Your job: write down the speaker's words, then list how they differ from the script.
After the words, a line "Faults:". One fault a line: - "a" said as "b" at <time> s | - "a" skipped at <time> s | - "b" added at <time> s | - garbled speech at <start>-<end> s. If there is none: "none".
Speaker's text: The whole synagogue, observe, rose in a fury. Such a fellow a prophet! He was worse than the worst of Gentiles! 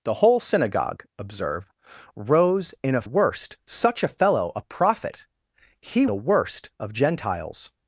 The whole synagogue, observe, rose in a worst. Such a fellow a prophet! He the worst of Gentiles!
Faults:
- "fury" said as "worst" at 3.0 s
- "was worse than" skipped at 6.0 s